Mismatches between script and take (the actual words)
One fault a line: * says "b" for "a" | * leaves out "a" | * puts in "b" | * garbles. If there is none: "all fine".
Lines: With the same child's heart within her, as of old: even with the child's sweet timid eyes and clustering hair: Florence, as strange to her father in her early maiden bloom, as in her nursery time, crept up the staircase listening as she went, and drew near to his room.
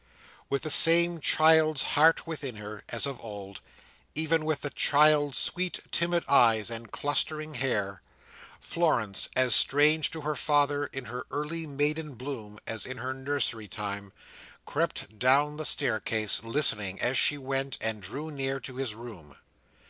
* says "down" for "up"